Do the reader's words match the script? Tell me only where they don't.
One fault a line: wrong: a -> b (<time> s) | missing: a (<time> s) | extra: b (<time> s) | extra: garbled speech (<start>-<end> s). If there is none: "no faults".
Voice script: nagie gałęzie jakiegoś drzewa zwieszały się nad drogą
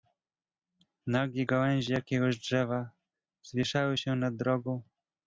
no faults